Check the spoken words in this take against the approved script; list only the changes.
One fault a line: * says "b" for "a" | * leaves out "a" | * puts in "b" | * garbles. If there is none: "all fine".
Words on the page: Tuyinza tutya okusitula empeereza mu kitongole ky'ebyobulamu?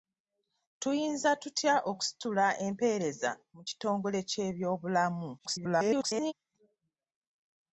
* garbles